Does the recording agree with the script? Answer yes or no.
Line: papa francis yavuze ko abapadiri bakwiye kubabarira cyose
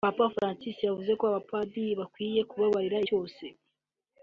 yes